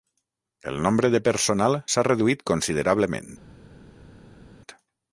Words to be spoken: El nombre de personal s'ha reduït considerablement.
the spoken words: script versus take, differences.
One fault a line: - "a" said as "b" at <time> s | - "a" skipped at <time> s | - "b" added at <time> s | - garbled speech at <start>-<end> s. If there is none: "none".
none